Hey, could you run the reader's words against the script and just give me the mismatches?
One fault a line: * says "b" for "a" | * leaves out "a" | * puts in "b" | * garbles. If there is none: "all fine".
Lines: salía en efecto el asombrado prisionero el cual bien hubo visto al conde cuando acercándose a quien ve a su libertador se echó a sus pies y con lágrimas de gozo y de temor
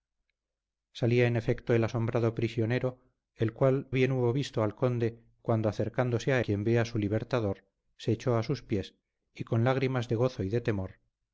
all fine